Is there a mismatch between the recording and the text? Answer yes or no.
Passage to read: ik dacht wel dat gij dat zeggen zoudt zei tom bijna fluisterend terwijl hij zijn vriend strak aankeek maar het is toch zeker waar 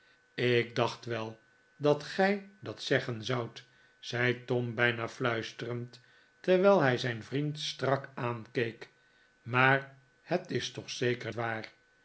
no